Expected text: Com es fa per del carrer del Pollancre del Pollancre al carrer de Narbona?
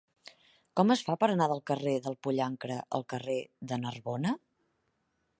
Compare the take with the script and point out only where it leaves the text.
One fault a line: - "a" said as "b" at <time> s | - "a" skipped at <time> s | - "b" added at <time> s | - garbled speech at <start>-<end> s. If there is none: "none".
- "anar" added at 1.3 s
- "del Pollancre" skipped at 2.8 s